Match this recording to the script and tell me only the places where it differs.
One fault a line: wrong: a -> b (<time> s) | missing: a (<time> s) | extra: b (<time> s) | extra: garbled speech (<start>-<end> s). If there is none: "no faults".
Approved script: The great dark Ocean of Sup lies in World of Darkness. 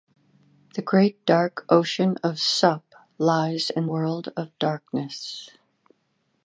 no faults